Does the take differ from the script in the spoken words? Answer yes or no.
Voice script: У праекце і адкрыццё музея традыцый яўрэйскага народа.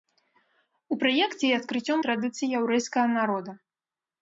yes